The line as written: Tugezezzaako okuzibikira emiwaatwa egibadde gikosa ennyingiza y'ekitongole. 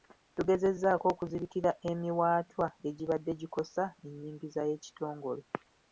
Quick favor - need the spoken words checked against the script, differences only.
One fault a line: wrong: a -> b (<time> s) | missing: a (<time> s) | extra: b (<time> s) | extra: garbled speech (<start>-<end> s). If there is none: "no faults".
no faults